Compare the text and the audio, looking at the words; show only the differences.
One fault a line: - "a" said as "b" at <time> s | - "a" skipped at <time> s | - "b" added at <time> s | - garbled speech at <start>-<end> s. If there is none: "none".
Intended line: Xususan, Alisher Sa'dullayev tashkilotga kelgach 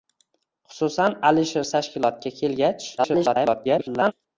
- "Sa'dullayev" skipped at 1.7 s
- garbled speech at 3.0-4.1 s